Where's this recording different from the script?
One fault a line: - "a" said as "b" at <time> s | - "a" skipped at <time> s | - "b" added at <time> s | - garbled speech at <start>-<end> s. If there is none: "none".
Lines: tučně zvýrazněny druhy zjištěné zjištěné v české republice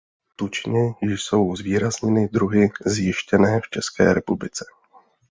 - "jsou" added at 1.0 s
- "zjištěné" skipped at 3.6 s